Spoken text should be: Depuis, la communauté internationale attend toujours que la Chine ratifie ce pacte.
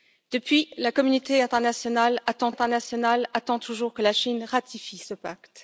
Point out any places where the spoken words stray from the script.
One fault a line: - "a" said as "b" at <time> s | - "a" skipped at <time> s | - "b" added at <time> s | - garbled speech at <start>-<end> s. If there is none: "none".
- "internationale attend" added at 2.5 s